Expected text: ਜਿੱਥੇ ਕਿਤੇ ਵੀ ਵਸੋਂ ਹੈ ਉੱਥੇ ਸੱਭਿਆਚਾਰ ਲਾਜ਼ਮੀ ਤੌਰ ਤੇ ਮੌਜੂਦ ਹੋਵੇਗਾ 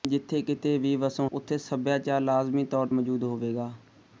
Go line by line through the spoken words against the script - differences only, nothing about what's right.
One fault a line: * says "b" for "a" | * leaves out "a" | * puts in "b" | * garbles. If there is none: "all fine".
* leaves out "ਹੈ"
* leaves out "ਤੇ"